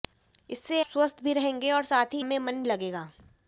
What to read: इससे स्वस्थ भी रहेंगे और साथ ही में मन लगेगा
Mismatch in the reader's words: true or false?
false